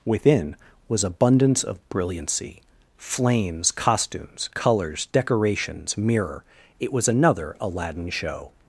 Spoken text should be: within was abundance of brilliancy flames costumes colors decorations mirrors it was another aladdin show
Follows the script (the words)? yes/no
no